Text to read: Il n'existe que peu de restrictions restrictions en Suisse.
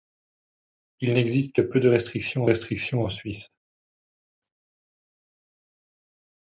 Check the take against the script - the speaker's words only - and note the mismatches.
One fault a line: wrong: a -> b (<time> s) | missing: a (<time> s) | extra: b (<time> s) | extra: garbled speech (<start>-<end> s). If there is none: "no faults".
no faults